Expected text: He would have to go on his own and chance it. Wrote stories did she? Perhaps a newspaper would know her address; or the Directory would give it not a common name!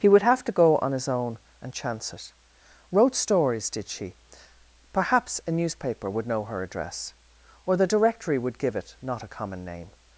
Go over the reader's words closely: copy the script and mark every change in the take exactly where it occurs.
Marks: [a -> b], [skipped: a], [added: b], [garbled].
He would have to go on his own and chance it. Wrote stories did she? Perhaps a newspaper would know her address; or the Directory would give it not a common name!